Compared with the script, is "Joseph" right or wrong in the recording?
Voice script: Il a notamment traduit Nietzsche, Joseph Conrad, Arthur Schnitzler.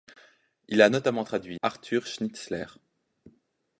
wrong